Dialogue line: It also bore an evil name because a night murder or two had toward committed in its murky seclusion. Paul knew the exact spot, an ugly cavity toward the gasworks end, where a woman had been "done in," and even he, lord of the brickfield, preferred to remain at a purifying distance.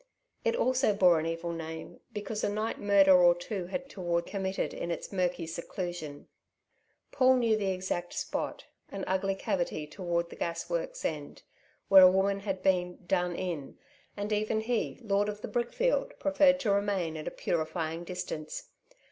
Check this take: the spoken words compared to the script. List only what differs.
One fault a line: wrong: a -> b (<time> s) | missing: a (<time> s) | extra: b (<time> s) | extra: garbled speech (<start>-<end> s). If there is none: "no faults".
no faults